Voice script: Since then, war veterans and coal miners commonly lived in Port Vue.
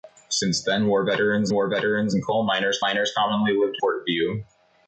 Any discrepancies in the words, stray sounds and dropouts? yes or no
yes